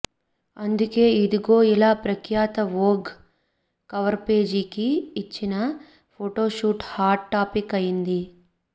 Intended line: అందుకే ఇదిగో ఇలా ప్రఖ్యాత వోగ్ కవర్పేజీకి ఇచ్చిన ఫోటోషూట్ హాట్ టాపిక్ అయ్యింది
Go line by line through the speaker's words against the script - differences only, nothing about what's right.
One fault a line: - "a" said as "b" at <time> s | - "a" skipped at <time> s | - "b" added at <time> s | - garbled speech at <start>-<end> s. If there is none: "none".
none